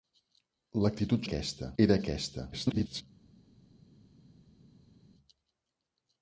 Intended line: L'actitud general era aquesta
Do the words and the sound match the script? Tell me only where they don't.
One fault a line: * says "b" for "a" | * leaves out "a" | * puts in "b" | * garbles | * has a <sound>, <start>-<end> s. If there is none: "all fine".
* says "aquesta" for "general"
* garbles